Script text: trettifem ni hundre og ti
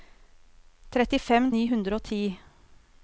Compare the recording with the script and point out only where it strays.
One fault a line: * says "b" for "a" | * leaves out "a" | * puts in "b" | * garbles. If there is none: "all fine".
all fine